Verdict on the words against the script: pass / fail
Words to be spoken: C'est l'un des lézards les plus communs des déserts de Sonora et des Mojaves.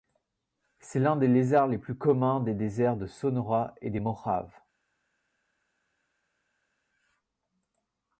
pass